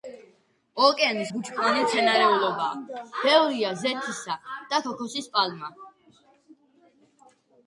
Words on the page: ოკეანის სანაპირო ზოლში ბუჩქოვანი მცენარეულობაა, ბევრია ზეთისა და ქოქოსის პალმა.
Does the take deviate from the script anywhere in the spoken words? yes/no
yes